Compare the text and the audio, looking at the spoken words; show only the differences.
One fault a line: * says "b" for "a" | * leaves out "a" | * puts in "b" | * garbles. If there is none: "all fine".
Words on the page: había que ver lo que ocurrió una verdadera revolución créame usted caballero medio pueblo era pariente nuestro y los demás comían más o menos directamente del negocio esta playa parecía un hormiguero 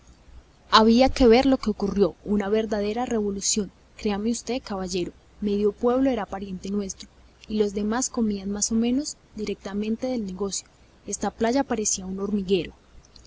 all fine